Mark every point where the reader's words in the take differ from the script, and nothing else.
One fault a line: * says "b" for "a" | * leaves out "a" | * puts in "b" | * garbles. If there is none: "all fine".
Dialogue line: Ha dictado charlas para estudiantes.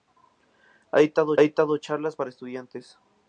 * puts in "dictado"